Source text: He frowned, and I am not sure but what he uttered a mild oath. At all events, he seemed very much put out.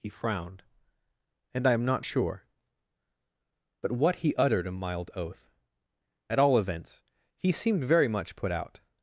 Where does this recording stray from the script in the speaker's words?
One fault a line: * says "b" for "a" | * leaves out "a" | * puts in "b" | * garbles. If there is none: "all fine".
all fine